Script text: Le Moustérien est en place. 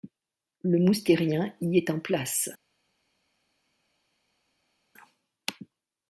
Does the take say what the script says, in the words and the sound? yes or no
no